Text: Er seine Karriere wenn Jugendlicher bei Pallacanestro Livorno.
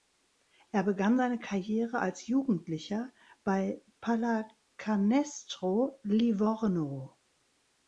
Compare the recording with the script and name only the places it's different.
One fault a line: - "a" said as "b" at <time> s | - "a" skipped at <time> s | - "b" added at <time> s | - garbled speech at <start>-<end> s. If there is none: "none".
- "begann" added at 0.8 s
- "wenn" said as "als" at 2.0 s